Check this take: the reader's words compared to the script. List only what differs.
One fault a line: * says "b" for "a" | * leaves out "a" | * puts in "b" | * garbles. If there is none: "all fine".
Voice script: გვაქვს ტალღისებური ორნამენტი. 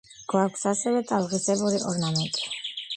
* puts in "ასევე"